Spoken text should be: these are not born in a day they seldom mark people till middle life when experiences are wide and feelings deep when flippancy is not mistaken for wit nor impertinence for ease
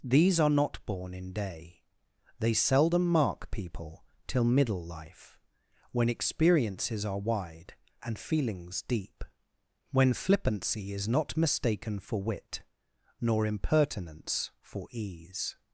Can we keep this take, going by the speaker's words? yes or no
no